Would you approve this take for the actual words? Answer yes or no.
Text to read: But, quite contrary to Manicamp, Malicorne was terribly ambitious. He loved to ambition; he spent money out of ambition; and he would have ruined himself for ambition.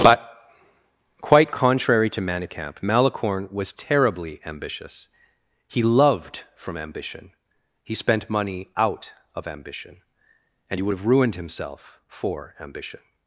no